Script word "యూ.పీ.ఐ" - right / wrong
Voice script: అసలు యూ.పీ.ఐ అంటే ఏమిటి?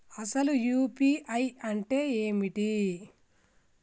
right